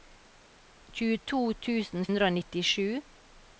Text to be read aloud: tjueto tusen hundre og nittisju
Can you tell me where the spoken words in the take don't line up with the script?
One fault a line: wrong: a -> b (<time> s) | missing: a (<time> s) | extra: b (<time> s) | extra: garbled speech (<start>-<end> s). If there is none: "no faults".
no faults